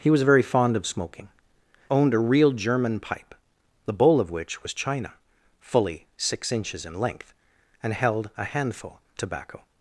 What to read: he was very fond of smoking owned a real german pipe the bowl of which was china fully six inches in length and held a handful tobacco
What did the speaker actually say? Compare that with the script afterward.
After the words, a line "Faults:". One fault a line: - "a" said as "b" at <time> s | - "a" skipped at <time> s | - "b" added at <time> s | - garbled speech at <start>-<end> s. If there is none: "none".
he was very fond of smoking owned a real german pipe the bowl of which was china fully six inches in length and held a handful tobacco
Faults:
none